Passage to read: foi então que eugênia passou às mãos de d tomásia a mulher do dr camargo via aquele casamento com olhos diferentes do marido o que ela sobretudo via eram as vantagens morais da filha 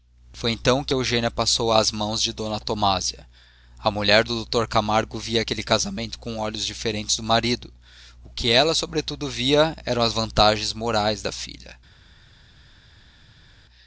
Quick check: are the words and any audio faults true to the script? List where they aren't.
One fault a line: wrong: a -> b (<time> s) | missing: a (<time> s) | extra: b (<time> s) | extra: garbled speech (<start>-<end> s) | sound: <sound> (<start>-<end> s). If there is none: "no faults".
no faults